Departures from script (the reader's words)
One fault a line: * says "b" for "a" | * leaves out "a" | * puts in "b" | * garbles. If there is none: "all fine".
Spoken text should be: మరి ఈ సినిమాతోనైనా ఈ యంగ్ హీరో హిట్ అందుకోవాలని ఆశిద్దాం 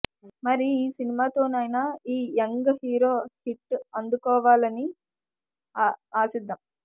all fine